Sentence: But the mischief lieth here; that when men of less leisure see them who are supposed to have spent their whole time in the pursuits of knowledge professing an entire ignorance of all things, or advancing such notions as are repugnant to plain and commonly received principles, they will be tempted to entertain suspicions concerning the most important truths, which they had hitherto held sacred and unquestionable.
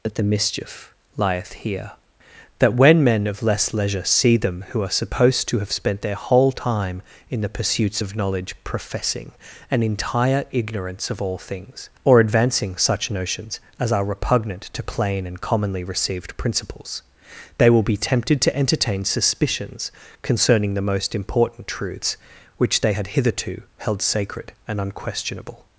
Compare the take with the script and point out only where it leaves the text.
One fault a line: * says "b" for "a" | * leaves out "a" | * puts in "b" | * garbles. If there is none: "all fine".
* says "That" for "But"